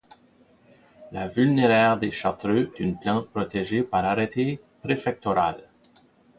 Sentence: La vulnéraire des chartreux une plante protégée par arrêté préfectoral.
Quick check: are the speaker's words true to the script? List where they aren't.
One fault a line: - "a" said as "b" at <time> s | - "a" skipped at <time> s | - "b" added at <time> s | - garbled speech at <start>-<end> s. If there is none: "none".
none